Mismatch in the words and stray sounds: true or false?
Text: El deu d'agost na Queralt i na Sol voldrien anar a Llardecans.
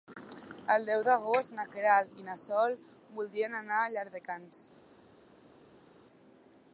false